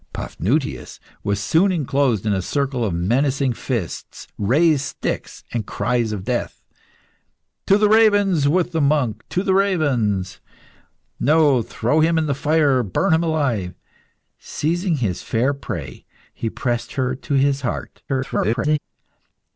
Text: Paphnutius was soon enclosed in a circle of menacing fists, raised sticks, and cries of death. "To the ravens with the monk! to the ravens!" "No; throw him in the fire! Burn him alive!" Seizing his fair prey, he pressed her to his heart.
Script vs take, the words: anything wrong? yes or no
yes